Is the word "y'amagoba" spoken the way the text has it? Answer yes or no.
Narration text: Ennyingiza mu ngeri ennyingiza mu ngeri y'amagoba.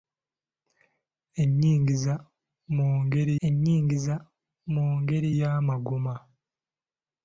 yes